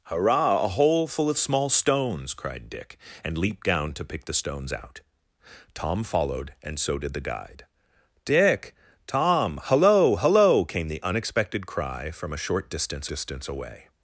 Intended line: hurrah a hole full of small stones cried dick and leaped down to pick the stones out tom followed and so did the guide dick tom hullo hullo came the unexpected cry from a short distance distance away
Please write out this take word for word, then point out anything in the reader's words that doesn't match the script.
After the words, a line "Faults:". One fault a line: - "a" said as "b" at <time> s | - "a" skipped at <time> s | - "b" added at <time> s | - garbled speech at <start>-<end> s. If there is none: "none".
hurrah a hole full of small stones cried dick and leaped down to pick the stones out tom followed and so did the guide dick tom hullo hullo came the unexpected cry from a short distance distance away
Faults:
none